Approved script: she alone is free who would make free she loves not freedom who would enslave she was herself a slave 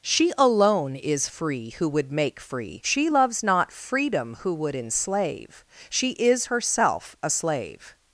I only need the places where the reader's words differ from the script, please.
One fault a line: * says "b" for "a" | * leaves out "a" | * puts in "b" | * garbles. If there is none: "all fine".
* says "is" for "was"